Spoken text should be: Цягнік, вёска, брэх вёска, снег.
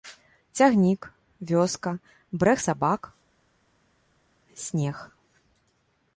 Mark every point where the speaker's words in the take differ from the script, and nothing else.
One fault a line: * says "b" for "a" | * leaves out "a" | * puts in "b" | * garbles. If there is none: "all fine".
* says "сабак" for "вёска"